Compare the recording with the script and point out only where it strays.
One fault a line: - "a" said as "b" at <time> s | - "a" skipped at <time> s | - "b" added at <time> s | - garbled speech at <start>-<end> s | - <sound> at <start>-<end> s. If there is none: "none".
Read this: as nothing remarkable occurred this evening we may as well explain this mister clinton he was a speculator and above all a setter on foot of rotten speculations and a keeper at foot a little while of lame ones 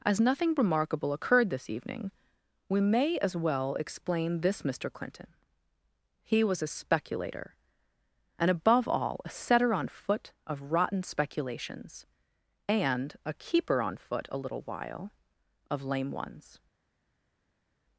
- "at" said as "on" at 13.8 s